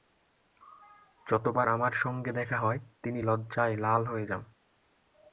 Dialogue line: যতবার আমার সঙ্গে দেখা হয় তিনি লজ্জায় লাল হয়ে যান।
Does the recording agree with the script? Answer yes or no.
yes